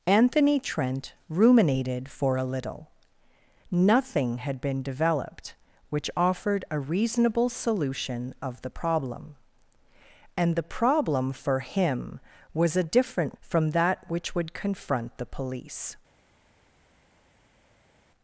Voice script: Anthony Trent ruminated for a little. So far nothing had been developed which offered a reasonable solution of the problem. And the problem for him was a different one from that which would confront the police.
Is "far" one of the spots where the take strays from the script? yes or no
yes